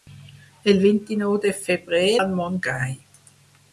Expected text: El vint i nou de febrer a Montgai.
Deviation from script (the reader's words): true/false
false